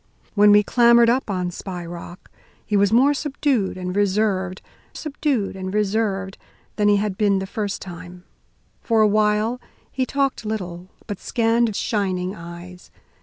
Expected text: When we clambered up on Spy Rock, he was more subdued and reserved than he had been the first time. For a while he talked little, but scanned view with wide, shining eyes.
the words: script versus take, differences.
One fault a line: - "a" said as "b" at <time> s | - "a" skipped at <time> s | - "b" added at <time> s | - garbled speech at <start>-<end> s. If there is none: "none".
- "subdued and reserved" added at 4.9 s
- "view with wide" skipped at 11.7 s